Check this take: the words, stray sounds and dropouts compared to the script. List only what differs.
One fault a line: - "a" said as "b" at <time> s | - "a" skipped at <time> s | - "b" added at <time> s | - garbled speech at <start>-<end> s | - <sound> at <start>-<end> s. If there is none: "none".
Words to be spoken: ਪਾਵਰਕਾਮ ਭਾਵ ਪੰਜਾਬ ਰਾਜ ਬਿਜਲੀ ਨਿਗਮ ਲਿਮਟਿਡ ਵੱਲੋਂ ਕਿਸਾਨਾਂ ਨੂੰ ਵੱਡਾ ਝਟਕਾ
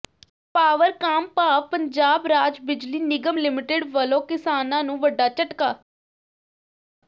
none